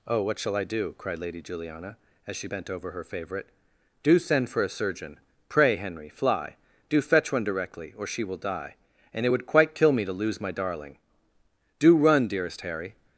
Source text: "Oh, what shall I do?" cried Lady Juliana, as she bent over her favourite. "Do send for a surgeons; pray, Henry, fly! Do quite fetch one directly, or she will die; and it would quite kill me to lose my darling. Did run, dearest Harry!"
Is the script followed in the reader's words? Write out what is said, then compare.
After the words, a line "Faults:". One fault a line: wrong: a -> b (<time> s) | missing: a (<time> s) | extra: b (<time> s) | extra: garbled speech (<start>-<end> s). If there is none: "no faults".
"Oh, what shall I do?" cried Lady Juliana, as she bent over her favourite. "Do send for a surgeon; pray, Henry, fly! Do fetch one directly, or she will die; and it would quite kill me to lose my darling. Do run, dearest Harry!"
Faults:
wrong: surgeons -> surgeon (4.7 s)
missing: quite (7.0 s)
wrong: Did -> Do (11.8 s)